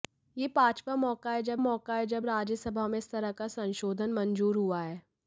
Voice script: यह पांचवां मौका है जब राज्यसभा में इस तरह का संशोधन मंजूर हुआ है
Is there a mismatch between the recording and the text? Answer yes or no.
yes